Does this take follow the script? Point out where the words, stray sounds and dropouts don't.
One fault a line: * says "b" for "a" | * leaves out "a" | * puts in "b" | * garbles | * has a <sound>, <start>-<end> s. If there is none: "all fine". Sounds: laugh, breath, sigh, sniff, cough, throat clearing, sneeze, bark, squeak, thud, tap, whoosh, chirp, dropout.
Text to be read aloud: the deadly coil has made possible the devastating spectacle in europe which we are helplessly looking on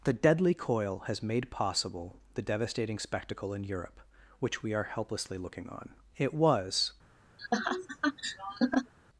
* puts in "it was"
* has a laugh, 7.4-8.9 s